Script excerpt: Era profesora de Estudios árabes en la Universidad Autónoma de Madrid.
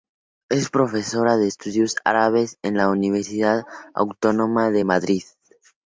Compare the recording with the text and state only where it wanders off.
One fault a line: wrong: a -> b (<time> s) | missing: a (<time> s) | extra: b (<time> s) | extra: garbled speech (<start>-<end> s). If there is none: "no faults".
wrong: Era -> Es (0.5 s)